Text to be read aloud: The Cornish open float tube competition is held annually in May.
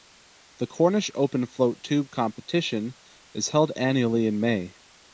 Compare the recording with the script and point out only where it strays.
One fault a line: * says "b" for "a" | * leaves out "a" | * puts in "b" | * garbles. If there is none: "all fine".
all fine